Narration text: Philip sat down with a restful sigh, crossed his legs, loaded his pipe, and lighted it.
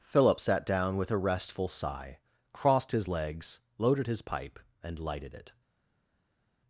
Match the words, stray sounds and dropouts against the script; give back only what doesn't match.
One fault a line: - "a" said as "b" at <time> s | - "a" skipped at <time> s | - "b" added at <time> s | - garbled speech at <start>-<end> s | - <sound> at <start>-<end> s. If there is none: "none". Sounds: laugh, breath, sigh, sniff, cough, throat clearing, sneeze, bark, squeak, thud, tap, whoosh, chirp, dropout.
none